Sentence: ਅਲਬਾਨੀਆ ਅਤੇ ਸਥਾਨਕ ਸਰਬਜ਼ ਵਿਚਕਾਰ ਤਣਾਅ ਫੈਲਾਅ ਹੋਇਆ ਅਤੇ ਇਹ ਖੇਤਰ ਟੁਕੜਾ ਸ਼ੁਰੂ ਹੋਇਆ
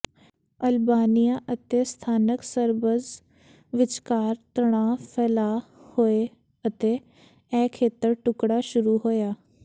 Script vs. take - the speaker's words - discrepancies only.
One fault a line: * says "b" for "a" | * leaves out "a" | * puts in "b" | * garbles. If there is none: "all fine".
all fine